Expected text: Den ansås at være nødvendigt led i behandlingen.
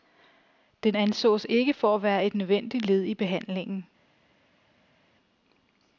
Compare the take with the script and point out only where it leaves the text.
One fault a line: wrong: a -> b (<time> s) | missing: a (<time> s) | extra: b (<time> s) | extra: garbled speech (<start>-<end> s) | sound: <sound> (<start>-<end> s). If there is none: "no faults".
extra: ikke for (1.5 s)
extra: et (2.2 s)